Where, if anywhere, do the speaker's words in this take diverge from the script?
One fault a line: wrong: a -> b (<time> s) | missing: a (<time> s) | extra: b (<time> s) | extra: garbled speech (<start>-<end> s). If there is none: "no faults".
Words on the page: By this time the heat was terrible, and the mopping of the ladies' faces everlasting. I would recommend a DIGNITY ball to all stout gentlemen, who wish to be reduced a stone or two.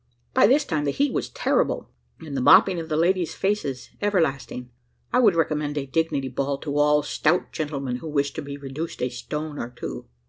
no faults